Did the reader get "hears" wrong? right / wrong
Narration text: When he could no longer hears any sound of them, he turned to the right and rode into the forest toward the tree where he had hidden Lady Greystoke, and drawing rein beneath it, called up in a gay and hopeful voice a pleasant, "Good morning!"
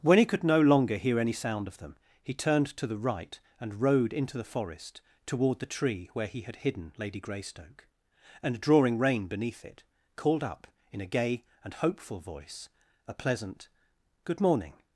wrong